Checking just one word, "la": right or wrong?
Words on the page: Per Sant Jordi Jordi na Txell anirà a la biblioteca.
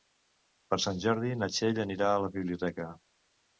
right